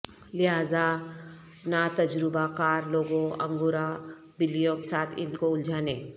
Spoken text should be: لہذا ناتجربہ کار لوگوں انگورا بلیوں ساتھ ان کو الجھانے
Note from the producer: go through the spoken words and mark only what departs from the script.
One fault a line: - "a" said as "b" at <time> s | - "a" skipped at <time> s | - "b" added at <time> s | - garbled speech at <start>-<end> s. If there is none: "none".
none